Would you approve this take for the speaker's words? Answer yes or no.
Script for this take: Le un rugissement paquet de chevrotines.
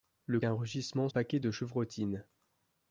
yes